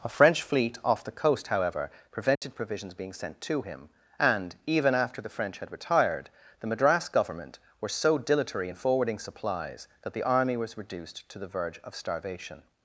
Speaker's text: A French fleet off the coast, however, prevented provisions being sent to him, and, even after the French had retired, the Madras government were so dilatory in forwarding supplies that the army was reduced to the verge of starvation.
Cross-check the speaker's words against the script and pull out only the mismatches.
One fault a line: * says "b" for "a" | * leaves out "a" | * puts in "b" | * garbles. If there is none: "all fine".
all fine